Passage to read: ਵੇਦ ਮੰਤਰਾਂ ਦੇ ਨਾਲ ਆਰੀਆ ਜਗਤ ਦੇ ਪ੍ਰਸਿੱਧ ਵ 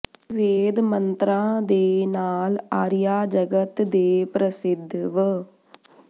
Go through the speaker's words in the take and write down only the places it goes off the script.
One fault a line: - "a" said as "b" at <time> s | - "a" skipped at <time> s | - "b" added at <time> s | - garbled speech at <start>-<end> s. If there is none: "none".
none